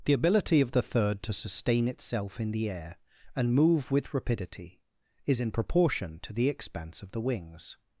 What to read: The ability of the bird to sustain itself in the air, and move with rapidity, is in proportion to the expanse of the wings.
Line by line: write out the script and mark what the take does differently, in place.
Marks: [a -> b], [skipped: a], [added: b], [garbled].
The ability of the [bird -> third] to sustain itself in the air, and move with rapidity, is in proportion to the expanse of the wings.